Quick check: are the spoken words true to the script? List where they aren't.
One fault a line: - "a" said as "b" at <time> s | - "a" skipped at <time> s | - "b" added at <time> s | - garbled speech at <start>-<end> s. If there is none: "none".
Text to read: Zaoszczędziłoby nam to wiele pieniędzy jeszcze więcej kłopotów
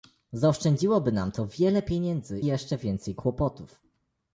none